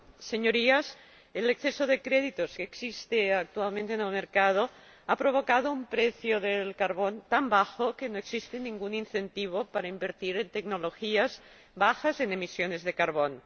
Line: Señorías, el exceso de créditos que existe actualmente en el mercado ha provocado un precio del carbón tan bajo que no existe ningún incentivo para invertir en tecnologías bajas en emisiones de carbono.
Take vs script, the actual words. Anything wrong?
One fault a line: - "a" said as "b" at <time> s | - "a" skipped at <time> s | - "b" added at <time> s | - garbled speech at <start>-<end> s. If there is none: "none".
none